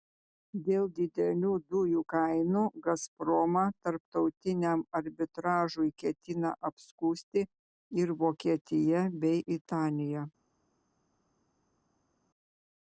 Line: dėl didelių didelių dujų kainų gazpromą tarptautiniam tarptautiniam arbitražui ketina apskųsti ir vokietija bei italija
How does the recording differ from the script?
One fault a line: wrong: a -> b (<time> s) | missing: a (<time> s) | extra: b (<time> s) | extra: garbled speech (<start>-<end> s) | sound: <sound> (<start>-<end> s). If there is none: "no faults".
missing: didelių (1.5 s)
missing: tarptautiniam (4.8 s)